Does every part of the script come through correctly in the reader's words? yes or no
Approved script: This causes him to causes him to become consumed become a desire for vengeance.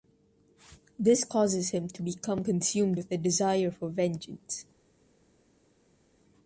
no